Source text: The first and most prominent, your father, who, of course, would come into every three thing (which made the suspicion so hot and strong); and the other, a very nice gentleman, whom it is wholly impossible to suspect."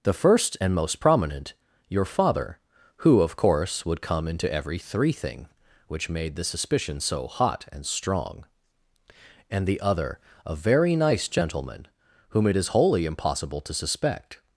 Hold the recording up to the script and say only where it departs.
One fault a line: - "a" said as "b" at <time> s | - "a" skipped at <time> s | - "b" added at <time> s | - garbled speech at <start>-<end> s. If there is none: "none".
none